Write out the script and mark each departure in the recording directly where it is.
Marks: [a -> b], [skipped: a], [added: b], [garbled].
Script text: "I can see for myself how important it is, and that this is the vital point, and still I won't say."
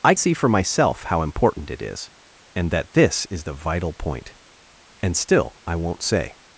"I [skipped: can] see for myself how important it is, and that this is the vital point, and still I won't say."